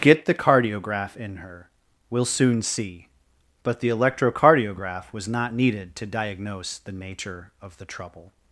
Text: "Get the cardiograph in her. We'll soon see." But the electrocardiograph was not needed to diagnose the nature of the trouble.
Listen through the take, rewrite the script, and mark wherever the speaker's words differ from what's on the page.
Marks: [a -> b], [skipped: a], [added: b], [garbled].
"Get the cardiograph in her. We'll soon see." But the electrocardiograph was not needed to diagnose the nature of the trouble.